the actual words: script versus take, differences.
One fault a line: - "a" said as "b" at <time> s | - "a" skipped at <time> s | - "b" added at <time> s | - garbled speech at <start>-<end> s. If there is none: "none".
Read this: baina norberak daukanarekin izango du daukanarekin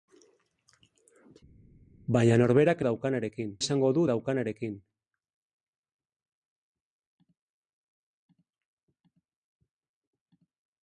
none